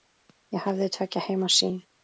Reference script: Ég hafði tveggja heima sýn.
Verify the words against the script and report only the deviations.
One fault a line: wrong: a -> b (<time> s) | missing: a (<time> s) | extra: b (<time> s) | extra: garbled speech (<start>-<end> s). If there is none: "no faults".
no faults